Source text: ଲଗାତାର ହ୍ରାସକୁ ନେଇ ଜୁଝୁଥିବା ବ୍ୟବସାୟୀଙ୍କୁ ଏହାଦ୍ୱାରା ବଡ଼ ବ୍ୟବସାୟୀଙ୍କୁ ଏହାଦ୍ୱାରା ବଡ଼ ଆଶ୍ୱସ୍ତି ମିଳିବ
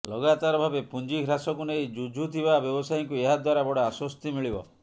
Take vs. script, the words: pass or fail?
fail